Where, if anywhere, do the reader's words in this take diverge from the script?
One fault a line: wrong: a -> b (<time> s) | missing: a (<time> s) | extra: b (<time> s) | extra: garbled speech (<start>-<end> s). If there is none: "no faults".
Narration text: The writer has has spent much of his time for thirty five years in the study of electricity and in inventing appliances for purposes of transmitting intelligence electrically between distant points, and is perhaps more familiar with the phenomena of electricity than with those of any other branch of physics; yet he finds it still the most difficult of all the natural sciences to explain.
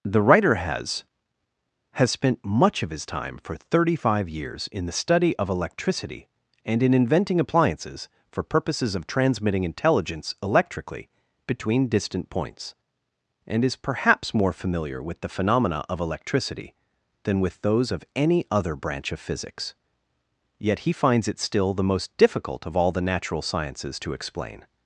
no faults